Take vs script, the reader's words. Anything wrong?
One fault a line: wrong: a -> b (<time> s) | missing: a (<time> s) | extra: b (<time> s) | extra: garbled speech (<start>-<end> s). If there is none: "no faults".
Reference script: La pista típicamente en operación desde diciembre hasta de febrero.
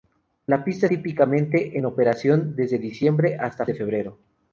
no faults